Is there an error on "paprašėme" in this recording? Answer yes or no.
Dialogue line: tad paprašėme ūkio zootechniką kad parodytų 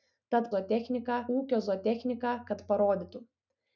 yes